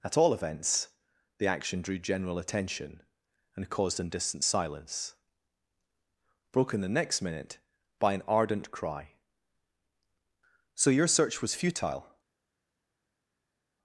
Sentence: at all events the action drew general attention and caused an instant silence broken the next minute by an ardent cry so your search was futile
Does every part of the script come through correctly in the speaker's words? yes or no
no